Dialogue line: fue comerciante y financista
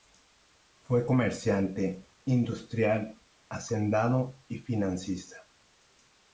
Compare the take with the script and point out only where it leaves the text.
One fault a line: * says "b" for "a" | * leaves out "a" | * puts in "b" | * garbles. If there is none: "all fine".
* puts in "industrial hacendado"